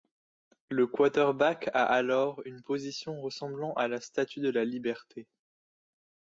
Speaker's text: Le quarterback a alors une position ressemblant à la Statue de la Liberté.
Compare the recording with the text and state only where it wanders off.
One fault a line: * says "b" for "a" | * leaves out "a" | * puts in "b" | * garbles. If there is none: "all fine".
all fine